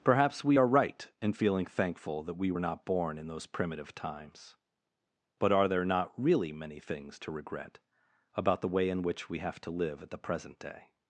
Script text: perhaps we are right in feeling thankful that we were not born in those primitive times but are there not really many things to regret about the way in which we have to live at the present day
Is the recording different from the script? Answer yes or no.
no